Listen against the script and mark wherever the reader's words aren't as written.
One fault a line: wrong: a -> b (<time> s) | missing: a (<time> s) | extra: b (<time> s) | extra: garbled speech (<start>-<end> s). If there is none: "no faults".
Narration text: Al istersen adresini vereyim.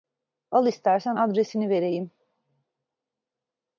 no faults